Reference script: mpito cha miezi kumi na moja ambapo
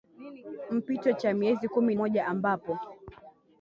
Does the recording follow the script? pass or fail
fail